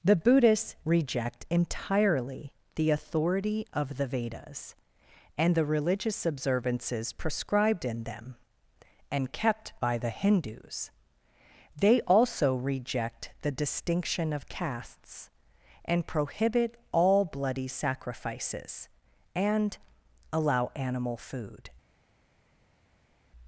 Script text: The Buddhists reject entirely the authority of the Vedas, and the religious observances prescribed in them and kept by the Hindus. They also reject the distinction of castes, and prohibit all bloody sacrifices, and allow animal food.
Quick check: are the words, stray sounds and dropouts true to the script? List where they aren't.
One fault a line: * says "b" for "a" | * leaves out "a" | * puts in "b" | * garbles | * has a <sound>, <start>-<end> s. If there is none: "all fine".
all fine